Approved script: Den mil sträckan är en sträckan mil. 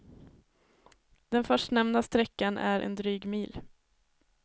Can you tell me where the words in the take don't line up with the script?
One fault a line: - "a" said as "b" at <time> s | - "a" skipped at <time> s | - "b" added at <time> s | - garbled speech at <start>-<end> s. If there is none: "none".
- "mil" said as "förstnämnda" at 1.4 s
- "sträckan" said as "dryg" at 2.9 s